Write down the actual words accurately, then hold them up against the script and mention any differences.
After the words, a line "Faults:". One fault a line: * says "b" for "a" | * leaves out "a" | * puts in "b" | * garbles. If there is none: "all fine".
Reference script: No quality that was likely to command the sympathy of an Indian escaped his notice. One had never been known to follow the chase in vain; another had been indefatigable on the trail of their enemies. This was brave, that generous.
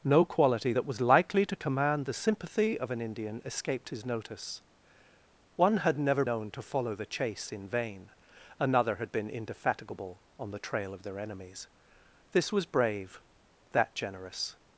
No quality that was likely to command the sympathy of an Indian escaped his notice. One had never known to follow the chase in vain; another had been indefatigable on the trail of their enemies. This was brave, that generous.
Faults:
* leaves out "been"